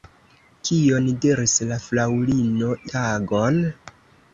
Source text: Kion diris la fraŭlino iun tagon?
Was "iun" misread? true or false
true